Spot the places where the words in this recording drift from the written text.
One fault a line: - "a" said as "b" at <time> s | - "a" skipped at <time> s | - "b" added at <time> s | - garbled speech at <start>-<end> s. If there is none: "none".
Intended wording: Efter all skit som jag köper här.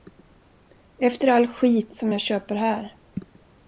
none